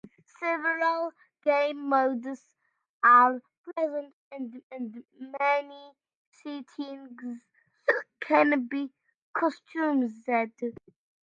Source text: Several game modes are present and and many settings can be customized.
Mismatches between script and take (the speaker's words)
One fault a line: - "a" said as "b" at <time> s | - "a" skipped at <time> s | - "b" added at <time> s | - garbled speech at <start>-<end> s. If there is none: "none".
none